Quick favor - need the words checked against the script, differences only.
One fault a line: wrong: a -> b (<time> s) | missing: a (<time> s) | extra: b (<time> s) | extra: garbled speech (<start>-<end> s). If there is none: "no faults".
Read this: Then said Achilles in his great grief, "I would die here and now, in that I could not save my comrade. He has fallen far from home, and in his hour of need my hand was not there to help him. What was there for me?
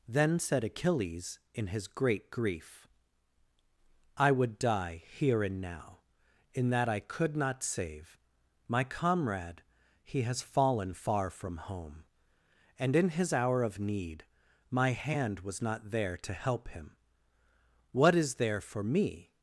wrong: was -> is (18.1 s)